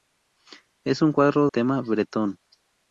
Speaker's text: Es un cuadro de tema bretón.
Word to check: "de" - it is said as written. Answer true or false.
false